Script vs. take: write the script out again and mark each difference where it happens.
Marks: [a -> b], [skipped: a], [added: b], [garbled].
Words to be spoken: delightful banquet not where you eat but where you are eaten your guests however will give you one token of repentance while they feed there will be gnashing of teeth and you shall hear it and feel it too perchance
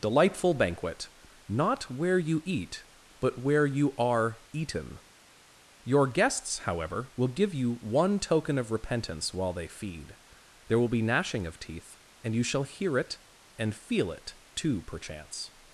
delightful banquet not where you eat but where you are eaten your guests however will give you one token of repentance while they feed there will be gnashing of teeth and you shall hear it and feel it too perchance